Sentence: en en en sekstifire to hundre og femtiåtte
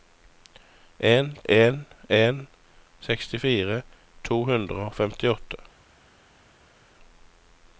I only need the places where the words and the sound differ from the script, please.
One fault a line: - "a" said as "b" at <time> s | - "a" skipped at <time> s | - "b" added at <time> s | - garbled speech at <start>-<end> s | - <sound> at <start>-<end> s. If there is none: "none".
none